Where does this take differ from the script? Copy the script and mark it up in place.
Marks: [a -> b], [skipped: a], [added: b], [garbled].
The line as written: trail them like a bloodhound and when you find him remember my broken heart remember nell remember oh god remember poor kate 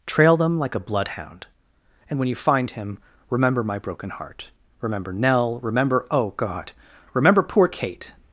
trail them like a bloodhound and when you find him remember my broken heart remember nell remember oh god remember poor kate